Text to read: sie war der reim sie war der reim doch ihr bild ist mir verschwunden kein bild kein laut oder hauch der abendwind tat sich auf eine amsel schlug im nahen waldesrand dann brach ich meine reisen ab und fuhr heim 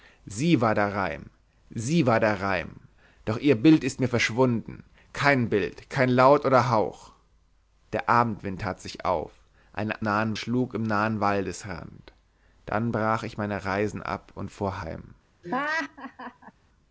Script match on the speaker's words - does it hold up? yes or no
no